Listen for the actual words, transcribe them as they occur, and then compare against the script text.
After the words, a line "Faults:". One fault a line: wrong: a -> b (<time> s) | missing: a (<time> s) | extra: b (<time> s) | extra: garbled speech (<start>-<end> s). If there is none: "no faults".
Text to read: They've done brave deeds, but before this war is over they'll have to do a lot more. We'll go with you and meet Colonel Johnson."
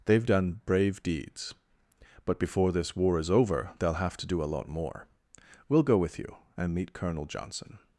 They've done brave deeds, but before this war is over they'll have to do a lot more. We'll go with you and meet Colonel Johnson."
Faults:
no faults